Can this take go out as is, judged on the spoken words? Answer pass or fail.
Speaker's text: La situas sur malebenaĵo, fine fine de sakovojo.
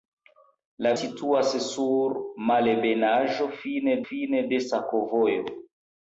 pass